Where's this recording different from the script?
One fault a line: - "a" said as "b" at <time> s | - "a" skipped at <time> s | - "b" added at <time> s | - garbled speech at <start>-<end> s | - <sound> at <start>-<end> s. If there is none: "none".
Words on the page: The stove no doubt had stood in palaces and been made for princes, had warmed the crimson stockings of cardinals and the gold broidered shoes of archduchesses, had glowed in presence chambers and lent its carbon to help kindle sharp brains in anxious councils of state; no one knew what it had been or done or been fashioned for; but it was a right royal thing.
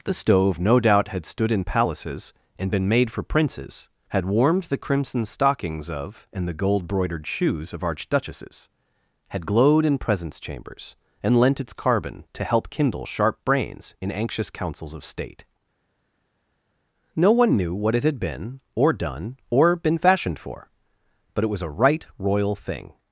- "cardinals" skipped at 6.3 s